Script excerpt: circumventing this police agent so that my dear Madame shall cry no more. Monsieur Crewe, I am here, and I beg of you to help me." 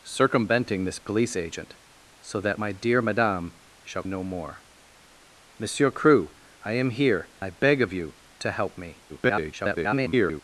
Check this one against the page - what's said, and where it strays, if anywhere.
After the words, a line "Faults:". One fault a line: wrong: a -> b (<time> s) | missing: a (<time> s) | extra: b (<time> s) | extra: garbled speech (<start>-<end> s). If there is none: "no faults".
circumventing this police agent so that my dear Madame shall no more. Monsieur Crewe, I am here, I beg of you to help me." [garbled]
Faults:
missing: cry (4.0 s)
missing: and (7.3 s)
extra: garbled speech (9.1-10.4 s)